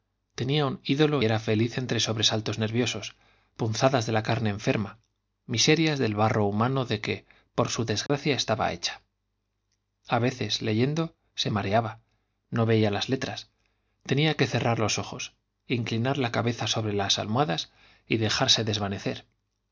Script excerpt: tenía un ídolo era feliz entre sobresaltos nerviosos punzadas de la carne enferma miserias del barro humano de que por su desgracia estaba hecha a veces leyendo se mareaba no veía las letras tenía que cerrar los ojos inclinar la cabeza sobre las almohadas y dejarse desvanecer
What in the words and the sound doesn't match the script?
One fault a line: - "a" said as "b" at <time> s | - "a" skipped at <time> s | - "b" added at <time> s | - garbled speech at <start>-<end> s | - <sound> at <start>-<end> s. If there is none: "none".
- dropout at 8.1-8.1 s